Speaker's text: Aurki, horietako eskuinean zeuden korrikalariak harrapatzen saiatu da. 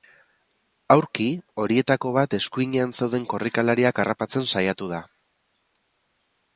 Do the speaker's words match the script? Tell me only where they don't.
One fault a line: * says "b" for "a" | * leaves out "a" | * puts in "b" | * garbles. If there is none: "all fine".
* puts in "bat"